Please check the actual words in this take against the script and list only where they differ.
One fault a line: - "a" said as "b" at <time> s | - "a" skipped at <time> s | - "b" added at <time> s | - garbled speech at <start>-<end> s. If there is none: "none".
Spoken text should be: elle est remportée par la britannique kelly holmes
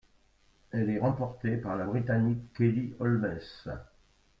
none